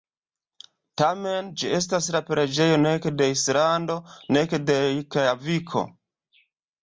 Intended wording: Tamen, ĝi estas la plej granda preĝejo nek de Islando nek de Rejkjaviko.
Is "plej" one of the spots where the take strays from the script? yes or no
yes